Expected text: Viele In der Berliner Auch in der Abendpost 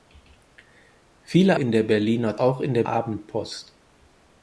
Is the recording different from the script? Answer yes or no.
no